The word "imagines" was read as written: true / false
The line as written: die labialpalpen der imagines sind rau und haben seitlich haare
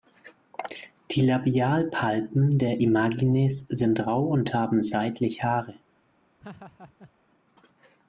true